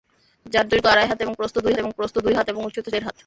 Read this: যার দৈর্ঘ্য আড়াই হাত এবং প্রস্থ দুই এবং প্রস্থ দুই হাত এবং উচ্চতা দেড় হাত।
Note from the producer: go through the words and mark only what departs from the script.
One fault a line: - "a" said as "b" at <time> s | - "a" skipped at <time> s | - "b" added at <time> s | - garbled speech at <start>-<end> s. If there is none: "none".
none